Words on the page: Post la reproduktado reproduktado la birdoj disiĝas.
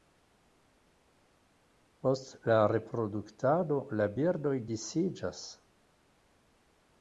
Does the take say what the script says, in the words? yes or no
no